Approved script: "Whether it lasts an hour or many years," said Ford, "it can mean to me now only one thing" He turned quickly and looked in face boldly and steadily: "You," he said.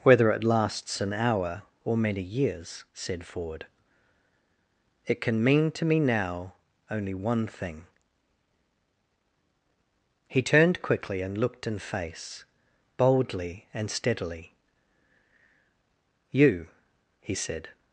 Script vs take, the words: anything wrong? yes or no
no